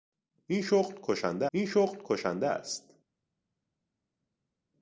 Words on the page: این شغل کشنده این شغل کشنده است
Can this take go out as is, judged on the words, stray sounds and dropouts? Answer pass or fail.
pass